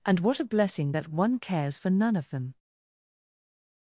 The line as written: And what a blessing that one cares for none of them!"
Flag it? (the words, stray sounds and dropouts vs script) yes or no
no